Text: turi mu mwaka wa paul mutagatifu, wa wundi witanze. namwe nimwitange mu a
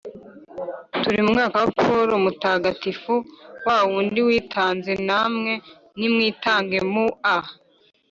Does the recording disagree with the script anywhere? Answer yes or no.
no